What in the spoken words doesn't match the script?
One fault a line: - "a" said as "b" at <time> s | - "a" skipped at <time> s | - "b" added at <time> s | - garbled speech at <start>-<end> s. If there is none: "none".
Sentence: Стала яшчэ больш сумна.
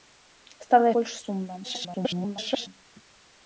- "яшчэ" skipped at 0.9 s
- garbled speech at 1.6-2.7 s